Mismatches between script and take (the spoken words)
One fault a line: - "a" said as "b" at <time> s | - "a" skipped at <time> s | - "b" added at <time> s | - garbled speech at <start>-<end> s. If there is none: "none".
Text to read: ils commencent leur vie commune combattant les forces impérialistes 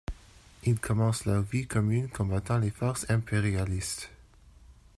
none